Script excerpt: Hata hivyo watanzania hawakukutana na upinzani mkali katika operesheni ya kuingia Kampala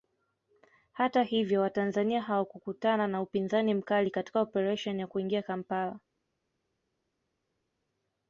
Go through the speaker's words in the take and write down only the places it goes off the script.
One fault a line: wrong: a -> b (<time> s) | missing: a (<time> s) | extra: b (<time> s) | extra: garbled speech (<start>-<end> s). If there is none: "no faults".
no faults